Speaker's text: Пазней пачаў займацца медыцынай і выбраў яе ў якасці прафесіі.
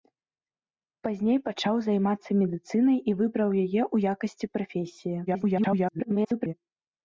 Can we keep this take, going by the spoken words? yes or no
no